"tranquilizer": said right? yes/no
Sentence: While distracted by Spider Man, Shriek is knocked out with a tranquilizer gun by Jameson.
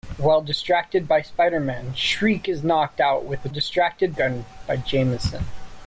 no